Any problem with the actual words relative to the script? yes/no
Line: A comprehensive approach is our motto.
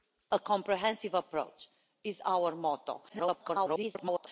yes